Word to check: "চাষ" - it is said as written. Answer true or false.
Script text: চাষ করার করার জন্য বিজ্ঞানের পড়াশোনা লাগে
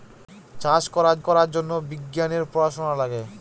true